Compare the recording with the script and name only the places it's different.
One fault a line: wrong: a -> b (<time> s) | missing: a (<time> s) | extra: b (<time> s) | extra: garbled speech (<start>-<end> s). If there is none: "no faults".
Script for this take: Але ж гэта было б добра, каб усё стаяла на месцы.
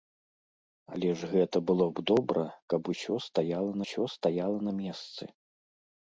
extra: усё стаяла (3.9 s)